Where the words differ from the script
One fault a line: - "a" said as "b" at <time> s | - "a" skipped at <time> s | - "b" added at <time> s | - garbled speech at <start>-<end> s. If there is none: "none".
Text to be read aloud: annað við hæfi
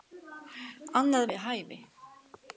none